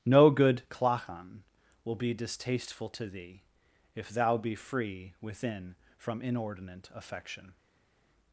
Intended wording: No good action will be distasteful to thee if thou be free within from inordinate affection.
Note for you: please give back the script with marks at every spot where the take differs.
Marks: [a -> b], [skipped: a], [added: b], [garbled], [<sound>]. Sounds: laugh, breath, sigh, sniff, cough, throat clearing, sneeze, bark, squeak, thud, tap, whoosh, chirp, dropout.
No good [action -> clachan] will be distasteful to thee if thou be free within from inordinate affection.